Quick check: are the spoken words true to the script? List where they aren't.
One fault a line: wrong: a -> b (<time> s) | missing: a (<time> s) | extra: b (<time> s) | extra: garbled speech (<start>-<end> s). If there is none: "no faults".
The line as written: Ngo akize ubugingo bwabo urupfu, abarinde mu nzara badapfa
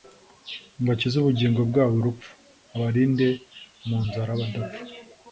no faults